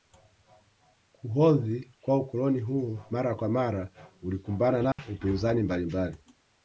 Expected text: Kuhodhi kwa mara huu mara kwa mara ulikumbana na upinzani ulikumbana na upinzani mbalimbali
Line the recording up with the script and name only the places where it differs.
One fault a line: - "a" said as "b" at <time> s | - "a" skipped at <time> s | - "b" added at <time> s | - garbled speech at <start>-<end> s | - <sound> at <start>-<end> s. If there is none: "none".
- "mara" said as "ukoloni" at 2.2 s
- dropout at 4.9-5.0 s
- "ulikumbana na upinzani" skipped at 5.6 s